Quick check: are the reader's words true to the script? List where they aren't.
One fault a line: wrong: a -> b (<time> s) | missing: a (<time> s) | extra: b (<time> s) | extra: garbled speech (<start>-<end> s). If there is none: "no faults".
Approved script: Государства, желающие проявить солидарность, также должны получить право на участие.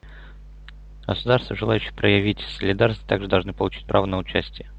no faults